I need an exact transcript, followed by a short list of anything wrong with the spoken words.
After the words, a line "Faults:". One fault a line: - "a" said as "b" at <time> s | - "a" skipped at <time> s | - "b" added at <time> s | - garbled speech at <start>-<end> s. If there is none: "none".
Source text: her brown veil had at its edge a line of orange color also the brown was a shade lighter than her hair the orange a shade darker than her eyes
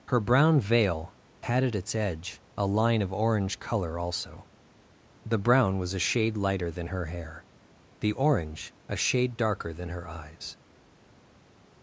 her brown veil had at its edge a line of orange color also the brown was a shade lighter than her hair the orange a shade darker than her eyes
Faults:
none